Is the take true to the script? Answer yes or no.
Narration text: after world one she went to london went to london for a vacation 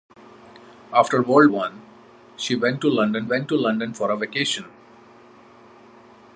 yes